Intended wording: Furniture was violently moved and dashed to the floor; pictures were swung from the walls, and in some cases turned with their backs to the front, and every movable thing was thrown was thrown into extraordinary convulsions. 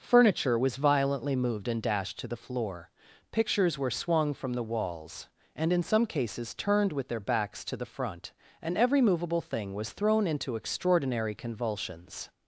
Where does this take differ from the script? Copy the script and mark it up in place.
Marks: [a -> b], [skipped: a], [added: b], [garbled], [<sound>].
Furniture was violently moved and dashed to the floor; pictures were swung from the walls, and in some cases turned with their backs to the front, and every movable thing was thrown [skipped: was thrown] into extraordinary convulsions.